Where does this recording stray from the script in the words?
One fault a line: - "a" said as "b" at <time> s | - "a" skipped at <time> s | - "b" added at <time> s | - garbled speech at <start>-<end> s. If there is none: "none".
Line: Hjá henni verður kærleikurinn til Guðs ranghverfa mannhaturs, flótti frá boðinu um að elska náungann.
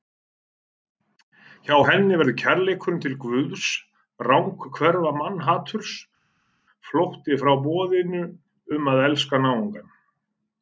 none